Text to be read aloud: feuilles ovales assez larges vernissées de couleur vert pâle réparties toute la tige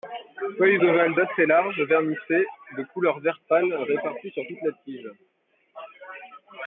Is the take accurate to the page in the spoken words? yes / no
no